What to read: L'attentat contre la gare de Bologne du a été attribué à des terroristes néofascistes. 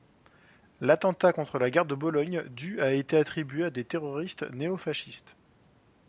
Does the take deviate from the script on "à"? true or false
false